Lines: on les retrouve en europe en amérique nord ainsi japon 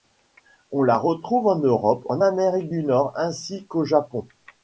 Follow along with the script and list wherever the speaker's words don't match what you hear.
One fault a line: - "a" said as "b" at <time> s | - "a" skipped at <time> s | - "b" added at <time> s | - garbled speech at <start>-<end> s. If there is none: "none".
- "les" said as "la" at 0.8 s
- "du" added at 2.7 s
- "qu'au" added at 3.7 s